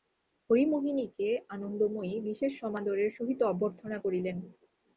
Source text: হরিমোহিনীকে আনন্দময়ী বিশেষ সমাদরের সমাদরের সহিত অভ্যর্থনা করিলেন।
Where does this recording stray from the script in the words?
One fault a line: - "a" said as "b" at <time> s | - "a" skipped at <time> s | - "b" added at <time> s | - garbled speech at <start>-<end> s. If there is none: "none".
- "সমাদরের" skipped at 3.1 s